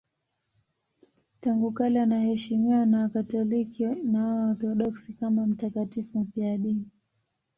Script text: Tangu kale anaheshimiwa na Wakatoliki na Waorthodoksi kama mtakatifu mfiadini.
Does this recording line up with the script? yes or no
yes